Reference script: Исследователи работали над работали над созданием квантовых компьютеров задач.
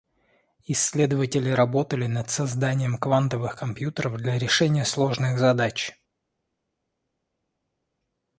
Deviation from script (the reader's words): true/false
true